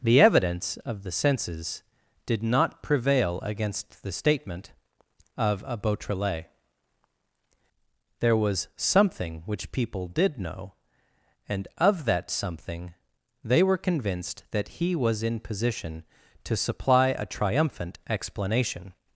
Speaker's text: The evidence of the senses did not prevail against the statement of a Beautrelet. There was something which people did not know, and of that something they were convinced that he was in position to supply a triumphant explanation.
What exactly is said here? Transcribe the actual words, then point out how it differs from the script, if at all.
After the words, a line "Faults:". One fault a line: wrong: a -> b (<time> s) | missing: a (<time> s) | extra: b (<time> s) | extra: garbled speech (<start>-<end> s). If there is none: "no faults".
The evidence of the senses did not prevail against the statement of a Beautrelet. There was something which people did know, and of that something they were convinced that he was in position to supply a triumphant explanation.
Faults:
missing: not (10.4 s)